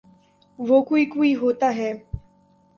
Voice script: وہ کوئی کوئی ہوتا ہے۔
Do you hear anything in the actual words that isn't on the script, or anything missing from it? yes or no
no